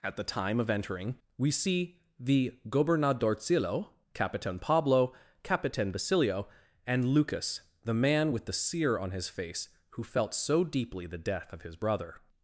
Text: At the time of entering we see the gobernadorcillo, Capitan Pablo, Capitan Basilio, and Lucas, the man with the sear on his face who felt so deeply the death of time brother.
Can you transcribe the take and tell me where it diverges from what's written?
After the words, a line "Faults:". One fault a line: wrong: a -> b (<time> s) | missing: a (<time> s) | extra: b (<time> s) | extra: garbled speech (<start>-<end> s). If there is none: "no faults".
At the time of entering we see the gobernadorcillo, Capitan Pablo, Capitan Basilio, and Lucas, the man with the sear on his face who felt so deeply the death of his brother.
Faults:
wrong: time -> his (11.6 s)